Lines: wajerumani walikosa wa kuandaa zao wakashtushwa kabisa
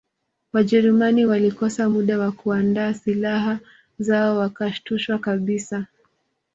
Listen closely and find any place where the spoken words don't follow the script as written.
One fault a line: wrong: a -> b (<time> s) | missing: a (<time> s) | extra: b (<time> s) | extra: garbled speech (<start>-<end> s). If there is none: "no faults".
extra: muda (1.9 s)
extra: silaha (2.9 s)